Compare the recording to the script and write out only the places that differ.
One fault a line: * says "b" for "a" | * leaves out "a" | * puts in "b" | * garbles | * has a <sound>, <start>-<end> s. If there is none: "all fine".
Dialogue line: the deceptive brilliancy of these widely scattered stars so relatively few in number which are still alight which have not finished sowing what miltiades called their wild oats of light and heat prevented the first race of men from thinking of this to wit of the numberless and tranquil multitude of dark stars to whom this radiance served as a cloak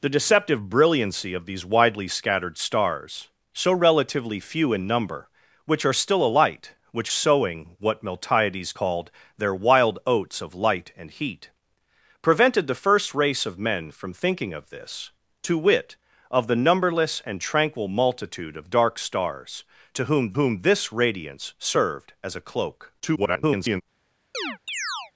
* leaves out "have not finished"
* puts in "whom"
* garbles
* has a chirp, 24.3-25.1 s